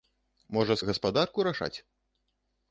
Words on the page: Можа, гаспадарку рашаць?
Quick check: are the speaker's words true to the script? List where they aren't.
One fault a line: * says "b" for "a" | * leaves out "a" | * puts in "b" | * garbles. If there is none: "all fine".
all fine